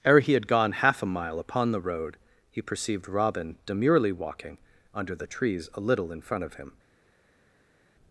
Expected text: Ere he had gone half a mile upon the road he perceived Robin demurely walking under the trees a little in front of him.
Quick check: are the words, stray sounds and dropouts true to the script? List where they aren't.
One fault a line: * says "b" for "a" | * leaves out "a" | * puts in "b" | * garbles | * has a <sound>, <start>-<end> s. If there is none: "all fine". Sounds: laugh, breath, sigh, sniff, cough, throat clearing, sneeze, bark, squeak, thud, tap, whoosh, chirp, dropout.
all fine